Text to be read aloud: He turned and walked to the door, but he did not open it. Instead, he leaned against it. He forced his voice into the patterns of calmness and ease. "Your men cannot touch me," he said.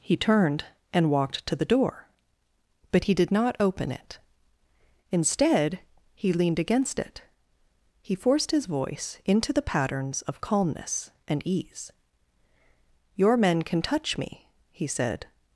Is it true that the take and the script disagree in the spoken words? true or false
true